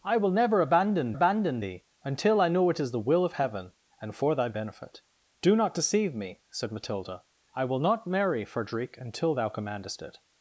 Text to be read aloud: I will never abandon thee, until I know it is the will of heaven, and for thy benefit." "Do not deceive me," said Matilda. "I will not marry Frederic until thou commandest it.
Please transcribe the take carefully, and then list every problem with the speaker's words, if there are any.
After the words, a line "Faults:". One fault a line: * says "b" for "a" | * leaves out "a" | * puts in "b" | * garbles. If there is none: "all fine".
I will never abandon abandon thee, until I know it is the will of heaven, and for thy benefit." "Do not deceive me," said Matilda. "I will not marry Frederic until thou commandest it.
Faults:
* puts in "abandon"